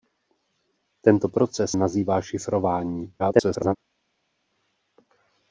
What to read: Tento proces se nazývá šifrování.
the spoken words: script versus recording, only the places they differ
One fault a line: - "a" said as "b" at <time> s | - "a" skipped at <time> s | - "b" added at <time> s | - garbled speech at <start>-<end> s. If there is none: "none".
- "se" skipped at 1.7 s
- garbled speech at 3.2-3.8 s